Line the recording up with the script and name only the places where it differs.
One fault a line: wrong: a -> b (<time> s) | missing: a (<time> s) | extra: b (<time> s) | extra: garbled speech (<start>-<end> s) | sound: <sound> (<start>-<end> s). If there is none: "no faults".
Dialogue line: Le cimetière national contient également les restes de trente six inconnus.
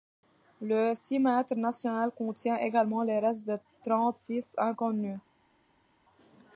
no faults